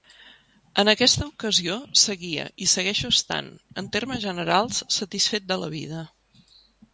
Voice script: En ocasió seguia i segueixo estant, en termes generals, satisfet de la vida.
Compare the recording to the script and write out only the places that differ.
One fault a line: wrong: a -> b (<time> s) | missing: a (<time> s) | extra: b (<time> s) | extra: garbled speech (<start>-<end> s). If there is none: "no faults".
extra: aquesta (0.9 s)